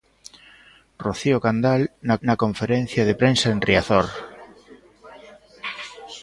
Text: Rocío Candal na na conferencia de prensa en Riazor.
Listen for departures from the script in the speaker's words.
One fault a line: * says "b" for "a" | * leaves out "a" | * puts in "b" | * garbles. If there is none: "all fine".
all fine